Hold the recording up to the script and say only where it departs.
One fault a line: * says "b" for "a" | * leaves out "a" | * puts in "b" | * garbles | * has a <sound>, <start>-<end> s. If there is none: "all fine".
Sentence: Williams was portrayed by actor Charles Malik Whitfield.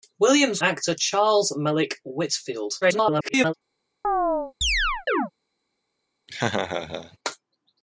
* leaves out "was portrayed by"
* garbles
* has a chirp, 4.0-5.3 s
* has a laugh, 6.3-7.2 s